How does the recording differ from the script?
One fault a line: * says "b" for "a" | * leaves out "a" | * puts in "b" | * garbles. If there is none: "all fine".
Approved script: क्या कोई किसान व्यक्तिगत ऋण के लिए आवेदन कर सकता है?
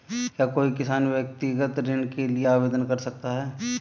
all fine